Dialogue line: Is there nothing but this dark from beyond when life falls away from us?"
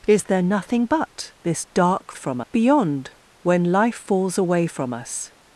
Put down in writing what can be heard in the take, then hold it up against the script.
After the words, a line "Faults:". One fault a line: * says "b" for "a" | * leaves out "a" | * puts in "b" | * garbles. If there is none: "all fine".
Is there nothing but this dark from beyond when life falls away from us?"
Faults:
all fine